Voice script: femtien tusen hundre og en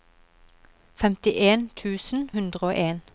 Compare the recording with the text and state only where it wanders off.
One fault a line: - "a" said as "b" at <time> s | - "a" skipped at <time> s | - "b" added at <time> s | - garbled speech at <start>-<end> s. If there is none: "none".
none